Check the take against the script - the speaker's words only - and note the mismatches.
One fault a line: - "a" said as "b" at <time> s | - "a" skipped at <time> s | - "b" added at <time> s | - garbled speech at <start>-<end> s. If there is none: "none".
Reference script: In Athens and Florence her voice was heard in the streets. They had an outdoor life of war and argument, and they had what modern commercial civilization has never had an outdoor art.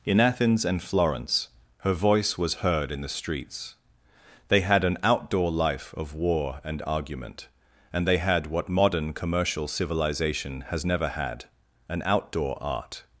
none